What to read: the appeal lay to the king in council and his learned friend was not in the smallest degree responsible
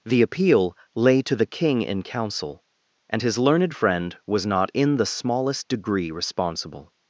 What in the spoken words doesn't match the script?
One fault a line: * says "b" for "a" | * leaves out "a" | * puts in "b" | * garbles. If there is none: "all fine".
all fine